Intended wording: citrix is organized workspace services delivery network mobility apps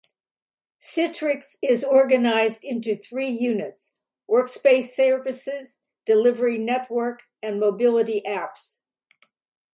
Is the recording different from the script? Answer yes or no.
yes